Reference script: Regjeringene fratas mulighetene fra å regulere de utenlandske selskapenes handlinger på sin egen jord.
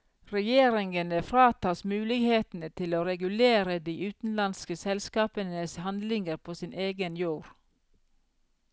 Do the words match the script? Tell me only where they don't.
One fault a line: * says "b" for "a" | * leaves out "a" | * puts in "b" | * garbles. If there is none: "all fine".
* says "til" for "fra"